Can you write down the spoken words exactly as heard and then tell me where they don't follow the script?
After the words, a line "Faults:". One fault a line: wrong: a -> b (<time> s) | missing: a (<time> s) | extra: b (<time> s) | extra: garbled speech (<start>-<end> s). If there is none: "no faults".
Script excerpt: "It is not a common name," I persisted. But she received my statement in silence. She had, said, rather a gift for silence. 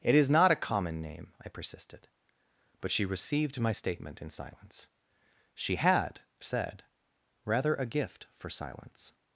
"It is not a common name," I persisted. But she received my statement in silence. She had, said, rather a gift for silence.
Faults:
no faults